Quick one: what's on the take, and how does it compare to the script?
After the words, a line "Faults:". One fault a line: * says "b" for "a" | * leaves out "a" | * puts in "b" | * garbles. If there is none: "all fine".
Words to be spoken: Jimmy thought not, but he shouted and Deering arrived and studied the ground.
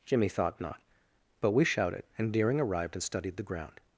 Jimmy thought not, but we shouted and Deering arrived and studied the ground.
Faults:
* says "we" for "he"